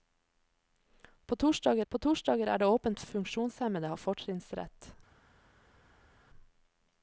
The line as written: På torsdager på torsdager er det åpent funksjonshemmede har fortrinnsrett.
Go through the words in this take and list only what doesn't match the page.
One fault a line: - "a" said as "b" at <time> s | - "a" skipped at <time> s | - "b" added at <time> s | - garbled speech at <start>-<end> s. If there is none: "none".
none